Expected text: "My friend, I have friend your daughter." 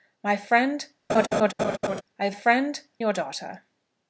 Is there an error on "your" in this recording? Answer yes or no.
no